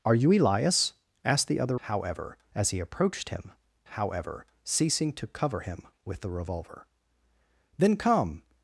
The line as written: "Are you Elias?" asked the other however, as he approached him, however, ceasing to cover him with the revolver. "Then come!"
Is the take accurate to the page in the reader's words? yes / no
yes